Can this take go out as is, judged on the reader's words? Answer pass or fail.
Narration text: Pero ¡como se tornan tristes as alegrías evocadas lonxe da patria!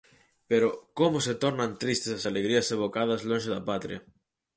pass